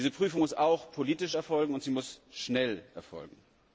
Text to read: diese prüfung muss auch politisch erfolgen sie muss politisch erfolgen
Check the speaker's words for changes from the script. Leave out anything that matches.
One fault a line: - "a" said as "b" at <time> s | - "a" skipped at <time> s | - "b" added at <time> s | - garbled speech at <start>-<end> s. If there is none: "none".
- "und" added at 1.7 s
- "politisch" said as "schnell" at 2.3 s